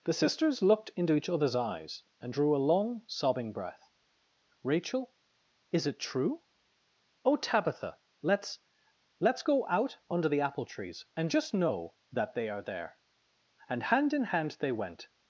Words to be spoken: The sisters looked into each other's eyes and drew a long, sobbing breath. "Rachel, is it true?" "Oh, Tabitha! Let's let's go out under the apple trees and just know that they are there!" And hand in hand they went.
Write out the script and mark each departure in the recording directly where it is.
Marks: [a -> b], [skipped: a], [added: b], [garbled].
The sisters looked into each other's eyes and drew a long, sobbing breath. "Rachel, is it true?" "Oh, Tabitha! Let's let's go out under the apple trees and just know that they are there!" And hand in hand they went.